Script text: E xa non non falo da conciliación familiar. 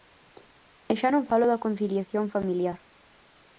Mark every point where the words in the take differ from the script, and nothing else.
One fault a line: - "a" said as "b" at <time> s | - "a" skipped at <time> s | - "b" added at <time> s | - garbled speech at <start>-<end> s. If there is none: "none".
- "non" skipped at 1.3 s